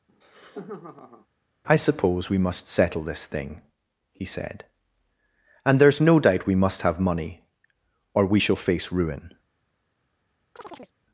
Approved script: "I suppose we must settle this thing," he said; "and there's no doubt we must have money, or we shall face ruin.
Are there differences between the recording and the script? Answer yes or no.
no